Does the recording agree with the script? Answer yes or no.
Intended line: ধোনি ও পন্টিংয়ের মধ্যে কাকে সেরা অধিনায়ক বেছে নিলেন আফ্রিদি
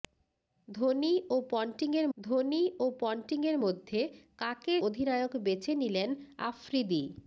no